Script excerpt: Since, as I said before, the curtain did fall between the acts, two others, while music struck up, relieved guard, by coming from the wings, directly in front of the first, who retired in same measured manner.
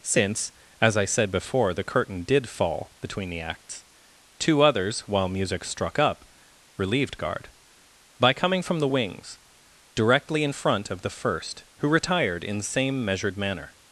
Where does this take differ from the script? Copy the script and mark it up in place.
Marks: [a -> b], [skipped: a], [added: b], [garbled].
Since, as I said before, the curtain did fall between the acts, two others, while music struck up, relieved guard, by coming from the wings, directly in front of the first, who retired in same measured manner.